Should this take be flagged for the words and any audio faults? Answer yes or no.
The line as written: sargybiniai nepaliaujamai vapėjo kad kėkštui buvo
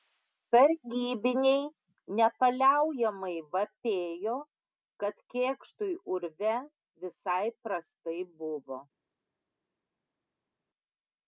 yes